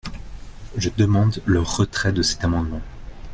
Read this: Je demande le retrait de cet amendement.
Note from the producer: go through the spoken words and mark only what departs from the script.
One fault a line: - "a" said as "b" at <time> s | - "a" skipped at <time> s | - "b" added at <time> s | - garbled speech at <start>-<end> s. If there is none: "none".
none